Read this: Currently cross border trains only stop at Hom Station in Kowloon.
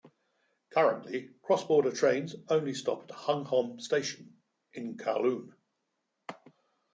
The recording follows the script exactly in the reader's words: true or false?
false